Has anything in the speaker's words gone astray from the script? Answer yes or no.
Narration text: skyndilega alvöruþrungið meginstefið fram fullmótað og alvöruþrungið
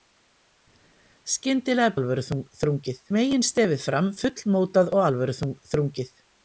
no